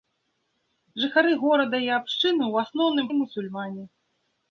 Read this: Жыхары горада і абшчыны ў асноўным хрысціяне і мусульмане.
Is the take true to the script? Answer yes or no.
no